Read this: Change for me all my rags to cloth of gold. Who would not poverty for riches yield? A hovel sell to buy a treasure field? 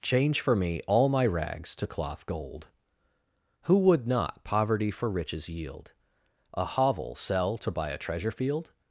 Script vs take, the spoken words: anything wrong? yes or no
yes